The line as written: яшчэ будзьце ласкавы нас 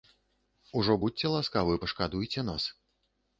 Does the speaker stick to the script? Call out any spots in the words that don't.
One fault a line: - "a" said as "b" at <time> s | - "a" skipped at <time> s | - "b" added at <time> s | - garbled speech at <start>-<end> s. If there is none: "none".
- "яшчэ" said as "ужо" at 0.8 s
- "пашкадуйце" added at 1.9 s